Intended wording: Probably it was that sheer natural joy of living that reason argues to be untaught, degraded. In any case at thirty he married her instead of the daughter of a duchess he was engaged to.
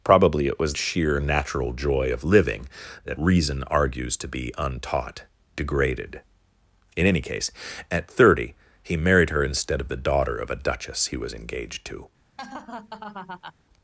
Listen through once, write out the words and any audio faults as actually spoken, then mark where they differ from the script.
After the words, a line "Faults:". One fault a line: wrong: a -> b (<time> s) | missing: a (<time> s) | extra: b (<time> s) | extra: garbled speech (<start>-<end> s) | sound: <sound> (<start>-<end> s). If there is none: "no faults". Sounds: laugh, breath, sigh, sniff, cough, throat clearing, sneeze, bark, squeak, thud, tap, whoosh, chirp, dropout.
Probably it was sheer natural joy of living that reason argues to be untaught, degraded. In any case at thirty he married her instead of the daughter of a duchess he was engaged to.
Faults:
missing: that (0.8 s)
sound: laugh (12.4-13.5 s)